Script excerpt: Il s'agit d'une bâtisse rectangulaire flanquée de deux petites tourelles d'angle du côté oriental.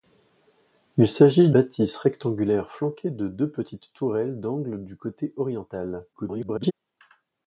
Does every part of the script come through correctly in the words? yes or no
no